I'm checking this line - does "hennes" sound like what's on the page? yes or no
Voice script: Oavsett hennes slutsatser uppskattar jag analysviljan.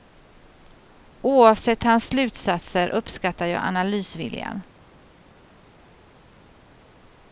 no